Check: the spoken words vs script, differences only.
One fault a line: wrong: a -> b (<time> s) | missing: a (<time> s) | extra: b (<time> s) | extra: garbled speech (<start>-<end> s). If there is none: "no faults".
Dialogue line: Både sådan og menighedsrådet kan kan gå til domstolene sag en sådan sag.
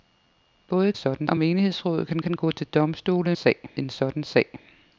no faults